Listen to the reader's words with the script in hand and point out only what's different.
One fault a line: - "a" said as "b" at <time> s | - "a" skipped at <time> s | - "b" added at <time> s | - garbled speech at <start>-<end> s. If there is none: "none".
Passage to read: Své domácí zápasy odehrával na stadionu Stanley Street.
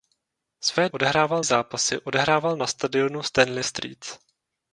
- "domácí" said as "odehrával" at 0.9 s